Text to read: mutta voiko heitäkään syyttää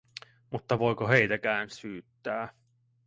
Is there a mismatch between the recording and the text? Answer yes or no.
no